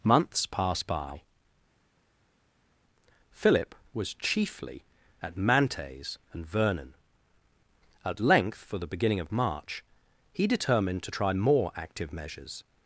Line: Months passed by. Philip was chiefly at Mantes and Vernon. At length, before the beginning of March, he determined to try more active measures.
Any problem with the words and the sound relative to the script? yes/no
yes